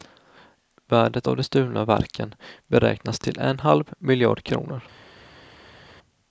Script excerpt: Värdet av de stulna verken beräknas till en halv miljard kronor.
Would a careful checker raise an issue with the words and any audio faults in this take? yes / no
no